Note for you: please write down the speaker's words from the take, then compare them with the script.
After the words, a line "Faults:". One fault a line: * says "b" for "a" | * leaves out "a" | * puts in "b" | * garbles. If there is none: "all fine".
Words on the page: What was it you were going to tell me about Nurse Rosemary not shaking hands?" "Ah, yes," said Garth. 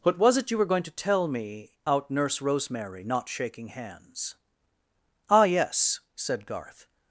What was it you were going to tell me out Nurse Rosemary not shaking hands?" "Ah, yes," said Garth.
Faults:
* says "out" for "about"